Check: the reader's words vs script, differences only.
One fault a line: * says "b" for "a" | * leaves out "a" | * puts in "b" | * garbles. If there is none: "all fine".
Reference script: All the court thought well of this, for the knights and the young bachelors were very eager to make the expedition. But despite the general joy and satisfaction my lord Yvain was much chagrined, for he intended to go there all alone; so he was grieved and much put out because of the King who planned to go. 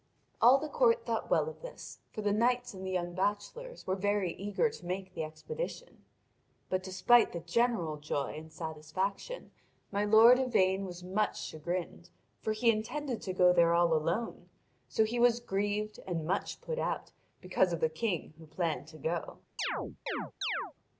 all fine